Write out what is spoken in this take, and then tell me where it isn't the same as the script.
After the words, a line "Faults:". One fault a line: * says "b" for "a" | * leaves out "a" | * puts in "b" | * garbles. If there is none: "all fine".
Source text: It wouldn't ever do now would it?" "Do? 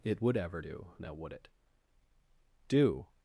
It would ever do now would it?" "Do?
Faults:
* says "would" for "wouldn't"